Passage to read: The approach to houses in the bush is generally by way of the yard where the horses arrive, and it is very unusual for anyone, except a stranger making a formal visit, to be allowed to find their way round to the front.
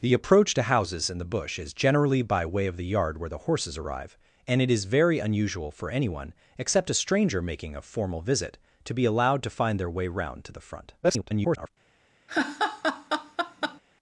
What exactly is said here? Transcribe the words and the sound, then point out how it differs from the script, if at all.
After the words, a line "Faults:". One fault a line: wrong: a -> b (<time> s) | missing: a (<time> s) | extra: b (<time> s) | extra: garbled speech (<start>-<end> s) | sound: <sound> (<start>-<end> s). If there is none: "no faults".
The approach to houses in the bush is generally by way of the yard where the horses arrive, and it is very unusual for anyone, except a stranger making a formal visit, to be allowed to find their way round to the front. [garbled]
Faults:
extra: garbled speech (11.0-11.7 s)
sound: laugh (12.3-13.8 s)